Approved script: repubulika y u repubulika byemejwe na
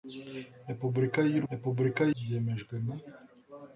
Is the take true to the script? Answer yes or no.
yes